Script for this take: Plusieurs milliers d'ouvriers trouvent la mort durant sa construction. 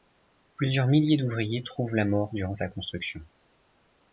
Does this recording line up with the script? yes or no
yes